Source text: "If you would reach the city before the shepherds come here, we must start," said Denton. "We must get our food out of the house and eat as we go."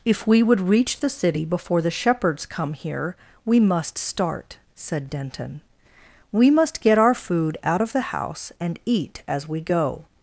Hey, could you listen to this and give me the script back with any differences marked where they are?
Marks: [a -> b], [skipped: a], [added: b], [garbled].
"If [you -> we] would reach the city before the shepherds come here, we must start," said Denton. "We must get our food out of the house and eat as we go."